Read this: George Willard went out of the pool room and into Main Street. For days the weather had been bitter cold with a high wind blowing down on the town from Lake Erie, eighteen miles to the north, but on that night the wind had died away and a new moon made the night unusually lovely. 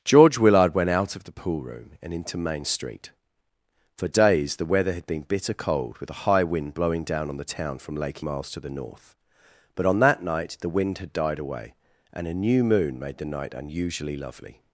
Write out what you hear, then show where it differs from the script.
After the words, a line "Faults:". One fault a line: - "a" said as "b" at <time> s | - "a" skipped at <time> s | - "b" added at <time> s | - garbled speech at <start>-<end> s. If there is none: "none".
George Willard went out of the pool room and into Main Street. For days the weather had been bitter cold with a high wind blowing down on the town from Lake Miles to the north, but on that night the wind had died away and a new moon made the night unusually lovely.
Faults:
- "Erie eighteen" skipped at 8.2 s